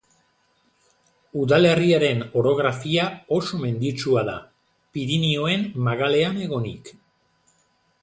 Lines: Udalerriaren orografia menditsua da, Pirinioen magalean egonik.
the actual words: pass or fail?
fail